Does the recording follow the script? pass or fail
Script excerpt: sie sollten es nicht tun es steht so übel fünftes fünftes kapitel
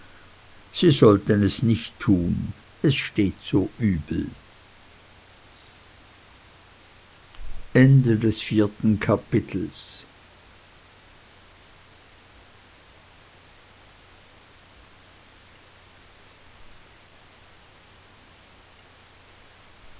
fail